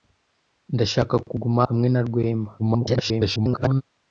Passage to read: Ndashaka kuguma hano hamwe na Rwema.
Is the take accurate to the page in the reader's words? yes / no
no